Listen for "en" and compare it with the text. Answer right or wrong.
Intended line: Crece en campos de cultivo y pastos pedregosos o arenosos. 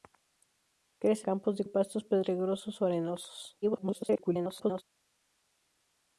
wrong